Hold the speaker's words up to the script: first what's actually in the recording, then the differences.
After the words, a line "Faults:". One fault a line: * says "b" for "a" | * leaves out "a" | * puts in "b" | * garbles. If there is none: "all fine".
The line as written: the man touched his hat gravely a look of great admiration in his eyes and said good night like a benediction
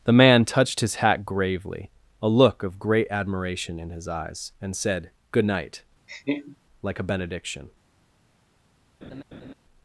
the man touched his hat gravely a look of great admiration in his eyes and said good night like a benediction
Faults:
all fine